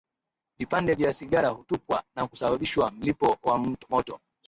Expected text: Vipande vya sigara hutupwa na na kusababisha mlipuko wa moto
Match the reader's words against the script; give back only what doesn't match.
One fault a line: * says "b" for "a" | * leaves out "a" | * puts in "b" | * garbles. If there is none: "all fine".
* leaves out "na"